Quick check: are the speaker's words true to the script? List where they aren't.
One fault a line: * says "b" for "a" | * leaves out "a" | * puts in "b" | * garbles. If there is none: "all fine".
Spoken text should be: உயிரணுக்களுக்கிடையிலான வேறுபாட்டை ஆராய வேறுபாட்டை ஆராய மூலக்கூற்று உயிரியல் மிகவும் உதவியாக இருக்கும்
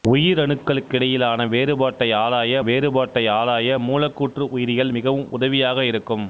all fine